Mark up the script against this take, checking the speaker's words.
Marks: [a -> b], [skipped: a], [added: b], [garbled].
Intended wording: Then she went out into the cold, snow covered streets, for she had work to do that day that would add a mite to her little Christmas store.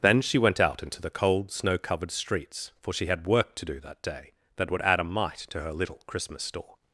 Then she went out into the cold, snow covered streets, for she had work to do that day that would add a mite to her little Christmas store.